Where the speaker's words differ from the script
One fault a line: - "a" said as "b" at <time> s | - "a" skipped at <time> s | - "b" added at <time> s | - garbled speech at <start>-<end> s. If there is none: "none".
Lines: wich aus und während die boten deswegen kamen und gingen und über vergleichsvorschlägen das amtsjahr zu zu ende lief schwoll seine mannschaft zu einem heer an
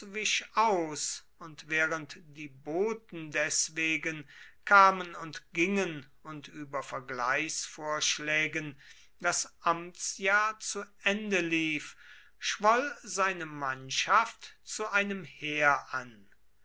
- "zu" skipped at 10.8 s